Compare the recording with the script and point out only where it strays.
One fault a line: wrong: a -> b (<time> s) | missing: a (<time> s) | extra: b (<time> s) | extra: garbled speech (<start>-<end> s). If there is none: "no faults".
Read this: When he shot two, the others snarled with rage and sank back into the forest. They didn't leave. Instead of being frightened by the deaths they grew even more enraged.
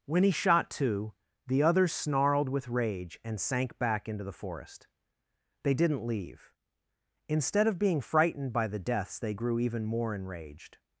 no faults